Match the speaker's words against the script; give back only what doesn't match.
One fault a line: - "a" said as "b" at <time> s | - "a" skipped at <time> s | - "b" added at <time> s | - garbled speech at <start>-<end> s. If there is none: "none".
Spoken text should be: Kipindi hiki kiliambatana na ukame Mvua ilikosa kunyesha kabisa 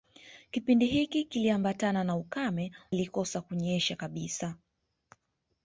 - "Mvua" skipped at 2.7 s